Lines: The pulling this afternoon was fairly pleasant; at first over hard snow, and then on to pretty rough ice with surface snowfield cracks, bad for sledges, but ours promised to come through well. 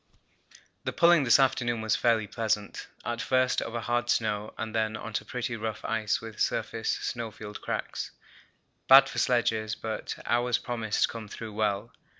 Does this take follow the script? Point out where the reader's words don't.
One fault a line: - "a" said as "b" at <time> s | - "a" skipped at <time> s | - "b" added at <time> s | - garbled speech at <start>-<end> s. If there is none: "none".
none